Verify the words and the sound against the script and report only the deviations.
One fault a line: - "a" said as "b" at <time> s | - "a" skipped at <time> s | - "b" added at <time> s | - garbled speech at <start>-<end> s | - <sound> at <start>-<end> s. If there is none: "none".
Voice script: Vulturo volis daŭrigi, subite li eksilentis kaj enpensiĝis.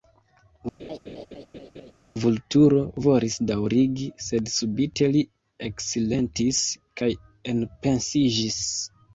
- laugh at 0.8-1.9 s
- "sed" added at 4.3 s